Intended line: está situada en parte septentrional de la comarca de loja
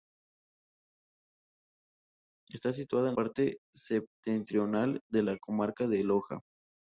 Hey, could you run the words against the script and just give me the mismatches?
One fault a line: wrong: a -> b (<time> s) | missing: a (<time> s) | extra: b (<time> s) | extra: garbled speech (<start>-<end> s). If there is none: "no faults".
no faults